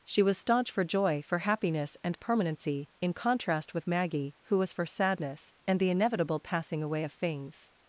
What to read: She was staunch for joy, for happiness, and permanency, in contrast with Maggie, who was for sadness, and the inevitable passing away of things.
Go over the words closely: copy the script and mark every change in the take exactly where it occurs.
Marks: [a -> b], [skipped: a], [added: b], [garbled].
She was staunch for joy, for happiness, and permanency, in contrast with Maggie, who was for sadness, and the inevitable passing away of things.